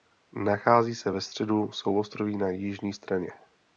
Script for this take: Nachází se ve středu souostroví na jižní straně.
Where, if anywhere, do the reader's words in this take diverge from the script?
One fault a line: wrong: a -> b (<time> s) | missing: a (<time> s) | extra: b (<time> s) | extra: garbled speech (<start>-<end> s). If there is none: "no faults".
no faults